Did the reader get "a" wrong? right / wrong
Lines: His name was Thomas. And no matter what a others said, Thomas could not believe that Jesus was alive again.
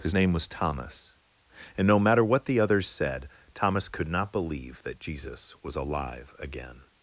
wrong